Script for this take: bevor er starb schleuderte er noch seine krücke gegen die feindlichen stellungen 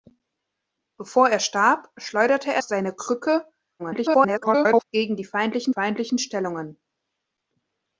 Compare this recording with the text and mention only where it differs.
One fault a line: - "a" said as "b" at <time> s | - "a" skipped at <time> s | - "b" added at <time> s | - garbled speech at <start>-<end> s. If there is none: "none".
- "noch" skipped at 2.6 s
- garbled speech at 3.8-4.8 s
- "feindlichen" added at 5.7 s